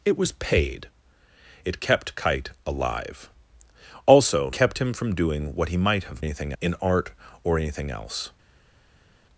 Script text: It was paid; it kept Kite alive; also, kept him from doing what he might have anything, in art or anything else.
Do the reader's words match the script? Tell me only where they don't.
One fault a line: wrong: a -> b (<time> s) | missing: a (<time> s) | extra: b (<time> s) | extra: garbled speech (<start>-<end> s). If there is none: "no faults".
no faults